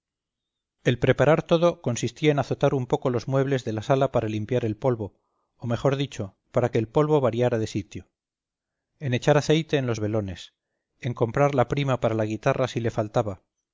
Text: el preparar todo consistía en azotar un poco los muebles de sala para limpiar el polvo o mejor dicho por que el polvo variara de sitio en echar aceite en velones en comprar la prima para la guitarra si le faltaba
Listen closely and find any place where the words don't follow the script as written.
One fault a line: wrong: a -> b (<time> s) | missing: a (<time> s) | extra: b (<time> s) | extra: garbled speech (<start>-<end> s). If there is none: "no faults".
extra: la (3.7 s)
wrong: por -> para (6.5 s)
extra: los (9.9 s)